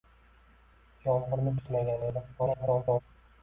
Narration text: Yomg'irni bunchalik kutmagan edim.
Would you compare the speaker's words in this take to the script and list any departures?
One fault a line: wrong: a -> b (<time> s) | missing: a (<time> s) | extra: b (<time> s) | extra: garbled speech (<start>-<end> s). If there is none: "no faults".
missing: bunchalik (1.5 s)
extra: garbled speech (2.4-3.0 s)